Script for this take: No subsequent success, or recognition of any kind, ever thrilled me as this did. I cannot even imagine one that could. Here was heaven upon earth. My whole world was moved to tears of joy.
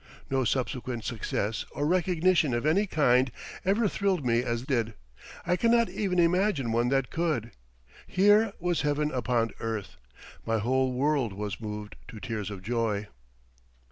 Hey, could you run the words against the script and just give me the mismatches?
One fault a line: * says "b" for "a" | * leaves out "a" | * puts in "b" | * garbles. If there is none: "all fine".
* leaves out "this"